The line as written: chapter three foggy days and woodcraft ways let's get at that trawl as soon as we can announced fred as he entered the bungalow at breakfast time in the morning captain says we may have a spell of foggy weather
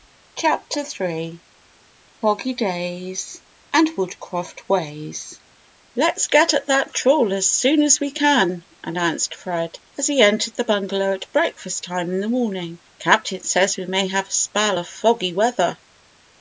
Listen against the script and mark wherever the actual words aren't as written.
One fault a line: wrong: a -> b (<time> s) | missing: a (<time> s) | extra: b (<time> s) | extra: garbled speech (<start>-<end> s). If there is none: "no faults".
no faults